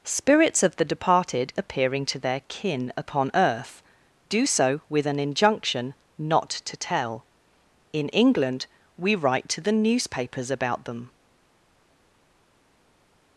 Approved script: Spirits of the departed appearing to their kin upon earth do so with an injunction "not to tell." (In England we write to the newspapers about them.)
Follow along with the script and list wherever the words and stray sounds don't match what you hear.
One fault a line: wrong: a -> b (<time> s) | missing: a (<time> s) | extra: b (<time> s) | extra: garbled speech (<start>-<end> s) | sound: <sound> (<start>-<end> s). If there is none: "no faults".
no faults